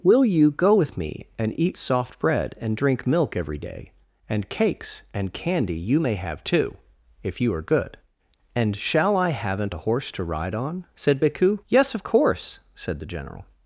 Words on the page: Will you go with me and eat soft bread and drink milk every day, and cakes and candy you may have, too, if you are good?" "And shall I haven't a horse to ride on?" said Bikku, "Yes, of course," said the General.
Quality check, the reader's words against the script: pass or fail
pass